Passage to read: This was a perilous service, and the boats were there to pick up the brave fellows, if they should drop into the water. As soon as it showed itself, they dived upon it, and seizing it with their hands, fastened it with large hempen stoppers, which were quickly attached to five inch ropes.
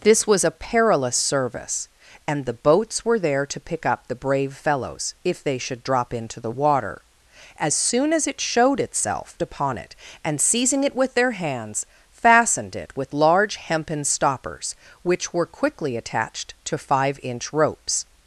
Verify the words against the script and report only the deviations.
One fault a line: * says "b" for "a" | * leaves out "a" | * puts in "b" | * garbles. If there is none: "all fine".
* leaves out "they dived"